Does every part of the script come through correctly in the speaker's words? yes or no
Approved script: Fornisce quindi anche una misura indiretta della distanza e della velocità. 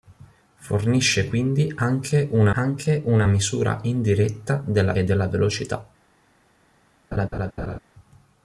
no